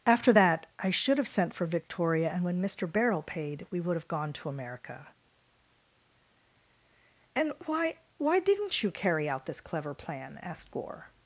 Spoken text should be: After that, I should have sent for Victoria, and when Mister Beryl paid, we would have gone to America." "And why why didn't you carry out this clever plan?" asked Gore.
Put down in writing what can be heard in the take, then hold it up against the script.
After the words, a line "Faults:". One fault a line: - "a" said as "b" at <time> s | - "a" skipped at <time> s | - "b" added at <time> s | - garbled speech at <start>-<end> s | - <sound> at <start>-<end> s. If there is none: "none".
After that, I should have sent for Victoria, and when Mister Beryl paid, we would have gone to America." "And why why didn't you carry out this clever plan?" asked Gore.
Faults:
none